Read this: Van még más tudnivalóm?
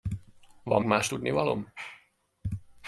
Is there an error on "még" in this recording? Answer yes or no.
yes